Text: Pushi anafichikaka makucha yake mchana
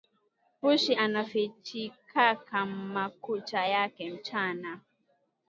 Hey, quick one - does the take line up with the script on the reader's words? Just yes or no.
yes